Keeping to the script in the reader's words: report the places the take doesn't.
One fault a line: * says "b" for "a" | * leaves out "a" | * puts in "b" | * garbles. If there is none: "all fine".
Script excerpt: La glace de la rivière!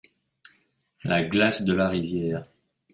all fine